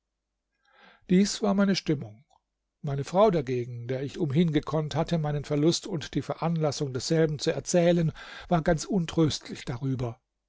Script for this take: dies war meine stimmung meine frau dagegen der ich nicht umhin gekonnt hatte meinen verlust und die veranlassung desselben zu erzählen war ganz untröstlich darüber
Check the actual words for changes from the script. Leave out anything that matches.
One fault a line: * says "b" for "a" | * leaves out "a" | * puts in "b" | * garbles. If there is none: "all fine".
* leaves out "nicht"